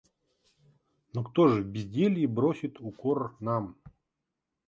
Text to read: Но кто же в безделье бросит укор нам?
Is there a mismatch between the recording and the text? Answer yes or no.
no